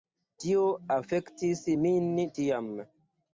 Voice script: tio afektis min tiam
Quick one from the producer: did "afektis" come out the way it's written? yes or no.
yes